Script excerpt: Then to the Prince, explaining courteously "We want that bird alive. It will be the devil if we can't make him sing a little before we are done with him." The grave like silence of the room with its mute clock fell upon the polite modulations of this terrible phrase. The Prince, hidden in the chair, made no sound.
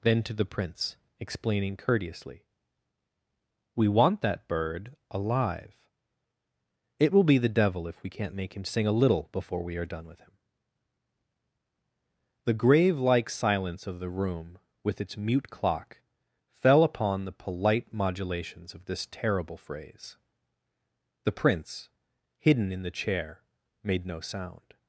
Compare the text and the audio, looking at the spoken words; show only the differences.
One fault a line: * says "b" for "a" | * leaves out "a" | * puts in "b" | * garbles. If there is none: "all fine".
all fine